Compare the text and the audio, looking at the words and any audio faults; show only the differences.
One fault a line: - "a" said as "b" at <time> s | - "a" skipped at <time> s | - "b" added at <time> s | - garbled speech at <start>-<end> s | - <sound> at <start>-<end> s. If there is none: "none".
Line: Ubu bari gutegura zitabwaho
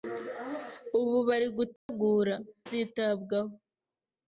- dropout at 1.8-1.9 s